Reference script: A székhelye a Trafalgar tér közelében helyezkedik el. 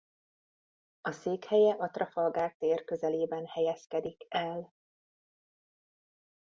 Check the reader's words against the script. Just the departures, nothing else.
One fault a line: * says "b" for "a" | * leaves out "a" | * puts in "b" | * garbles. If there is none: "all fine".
all fine